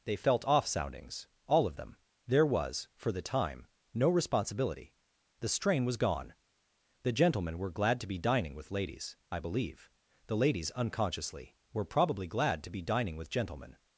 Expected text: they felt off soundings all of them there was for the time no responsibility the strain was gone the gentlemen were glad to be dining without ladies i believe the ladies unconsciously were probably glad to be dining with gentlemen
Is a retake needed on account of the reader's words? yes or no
yes